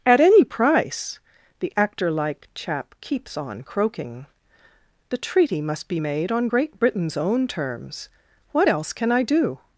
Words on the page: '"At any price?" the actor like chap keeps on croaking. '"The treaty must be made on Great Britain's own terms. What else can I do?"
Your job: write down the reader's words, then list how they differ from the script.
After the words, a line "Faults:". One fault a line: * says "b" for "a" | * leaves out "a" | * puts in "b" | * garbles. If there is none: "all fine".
'"At any price?" the actor like chap keeps on croaking. '"The treaty must be made on Great Britain's own terms. What else can I do?"
Faults:
all fine